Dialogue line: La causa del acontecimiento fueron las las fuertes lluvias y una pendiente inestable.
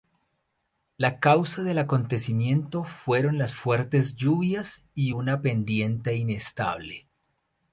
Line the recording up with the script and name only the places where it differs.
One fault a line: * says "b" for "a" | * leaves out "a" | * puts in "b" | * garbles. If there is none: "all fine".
* leaves out "las"